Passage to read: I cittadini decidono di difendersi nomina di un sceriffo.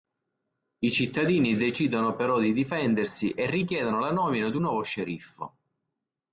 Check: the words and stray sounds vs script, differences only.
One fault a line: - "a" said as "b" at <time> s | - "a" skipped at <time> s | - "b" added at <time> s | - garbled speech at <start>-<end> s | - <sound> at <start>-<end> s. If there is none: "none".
- "però" added at 2.1 s
- "e richiedono la" added at 3.3 s
- "nuovo" added at 4.6 s